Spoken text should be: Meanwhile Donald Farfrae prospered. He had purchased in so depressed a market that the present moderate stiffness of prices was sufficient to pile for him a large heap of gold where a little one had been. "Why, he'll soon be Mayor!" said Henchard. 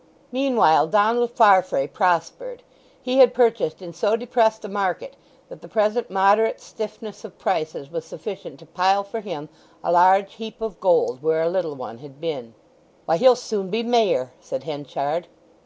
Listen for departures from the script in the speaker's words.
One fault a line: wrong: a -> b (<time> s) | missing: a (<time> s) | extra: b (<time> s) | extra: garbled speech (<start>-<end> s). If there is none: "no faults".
no faults